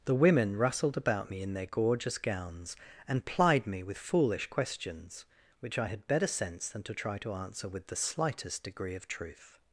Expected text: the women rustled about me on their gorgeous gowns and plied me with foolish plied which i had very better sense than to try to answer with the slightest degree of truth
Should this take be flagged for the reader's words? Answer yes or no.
yes